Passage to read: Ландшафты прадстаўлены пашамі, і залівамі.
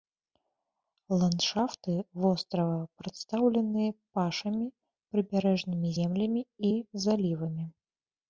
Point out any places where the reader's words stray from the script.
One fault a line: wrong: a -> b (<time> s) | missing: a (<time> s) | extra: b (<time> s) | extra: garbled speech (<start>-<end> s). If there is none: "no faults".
extra: вострава (2.2 s)
extra: прыбярэжнымі землямі (5.1 s)